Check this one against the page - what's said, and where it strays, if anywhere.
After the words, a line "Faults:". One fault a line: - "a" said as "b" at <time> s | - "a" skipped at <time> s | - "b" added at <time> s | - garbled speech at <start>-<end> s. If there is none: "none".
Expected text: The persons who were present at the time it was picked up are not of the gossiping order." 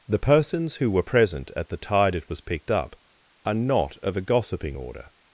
The persons who were present at the tide it was picked up are not of a gossiping order."
Faults:
- "time" said as "tide" at 1.8 s
- "the" said as "a" at 4.2 s